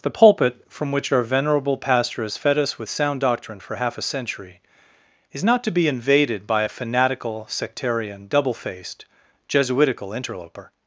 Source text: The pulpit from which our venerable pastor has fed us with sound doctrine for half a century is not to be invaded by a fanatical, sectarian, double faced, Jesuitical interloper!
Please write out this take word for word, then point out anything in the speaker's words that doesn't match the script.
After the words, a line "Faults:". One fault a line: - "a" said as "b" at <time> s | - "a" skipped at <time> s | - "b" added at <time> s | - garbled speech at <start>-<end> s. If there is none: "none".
The pulpit from which our venerable pastor has fed us with sound doctrine for half a century is not to be invaded by a fanatical, sectarian, double faced, Jesuitical interloper!
Faults:
none